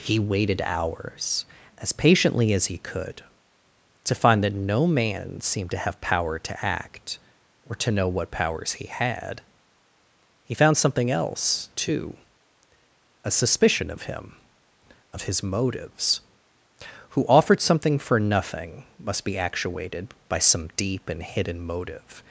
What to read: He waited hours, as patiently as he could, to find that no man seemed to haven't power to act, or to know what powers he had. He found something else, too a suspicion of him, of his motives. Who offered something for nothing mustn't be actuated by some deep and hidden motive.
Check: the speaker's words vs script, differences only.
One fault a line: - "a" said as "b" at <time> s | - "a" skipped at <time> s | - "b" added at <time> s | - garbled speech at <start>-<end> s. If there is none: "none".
- "haven't" said as "have" at 5.8 s
- "mustn't" said as "must" at 19.0 s